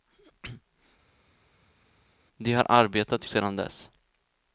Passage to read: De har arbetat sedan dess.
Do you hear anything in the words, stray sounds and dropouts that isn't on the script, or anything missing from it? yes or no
no